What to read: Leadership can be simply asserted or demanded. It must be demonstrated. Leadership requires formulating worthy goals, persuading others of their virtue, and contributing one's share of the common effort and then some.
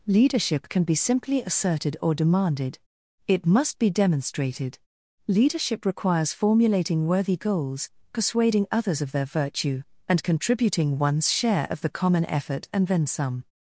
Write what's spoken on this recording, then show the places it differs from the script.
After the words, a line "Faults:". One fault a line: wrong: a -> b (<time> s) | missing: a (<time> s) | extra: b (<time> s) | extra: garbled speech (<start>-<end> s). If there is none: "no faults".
Leadership can be simply asserted or demanded. It must be demonstrated. Leadership requires formulating worthy goals, persuading others of their virtue, and contributing one's share of the common effort and then some.
Faults:
no faults